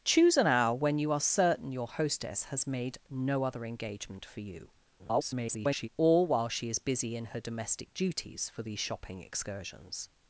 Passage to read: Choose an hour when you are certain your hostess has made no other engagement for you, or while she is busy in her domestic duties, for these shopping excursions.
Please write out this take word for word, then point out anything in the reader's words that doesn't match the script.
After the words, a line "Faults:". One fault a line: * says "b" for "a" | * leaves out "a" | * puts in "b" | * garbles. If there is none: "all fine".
Choose an hour when you are certain your hostess has made no other engagement for you, [garbled] or while she is busy in her domestic duties, for these shopping excursions.
Faults:
* garbles